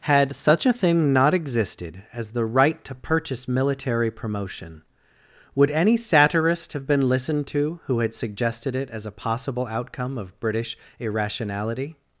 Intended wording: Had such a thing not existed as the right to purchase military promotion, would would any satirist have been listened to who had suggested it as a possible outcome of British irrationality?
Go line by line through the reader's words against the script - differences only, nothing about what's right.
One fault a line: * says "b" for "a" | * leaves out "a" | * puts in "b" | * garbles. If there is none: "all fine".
* leaves out "would"